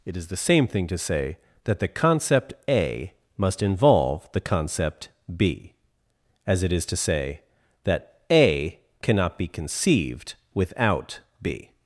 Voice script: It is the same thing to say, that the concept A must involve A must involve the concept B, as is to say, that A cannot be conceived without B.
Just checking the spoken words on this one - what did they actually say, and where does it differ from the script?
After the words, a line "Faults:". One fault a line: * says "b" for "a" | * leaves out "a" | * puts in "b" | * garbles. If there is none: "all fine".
It is the same thing to say, that the concept A must involve the concept B, as it is to say, that A cannot be conceived without B.
Faults:
* leaves out "A must involve"
* puts in "it"